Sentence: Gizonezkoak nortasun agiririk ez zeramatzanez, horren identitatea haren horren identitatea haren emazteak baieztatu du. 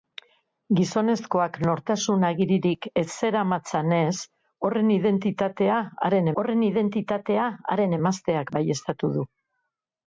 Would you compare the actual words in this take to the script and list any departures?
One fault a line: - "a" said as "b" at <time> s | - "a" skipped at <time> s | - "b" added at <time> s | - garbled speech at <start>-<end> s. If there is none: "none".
none